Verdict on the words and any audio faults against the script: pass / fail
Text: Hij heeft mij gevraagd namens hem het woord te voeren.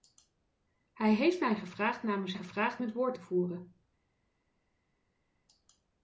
fail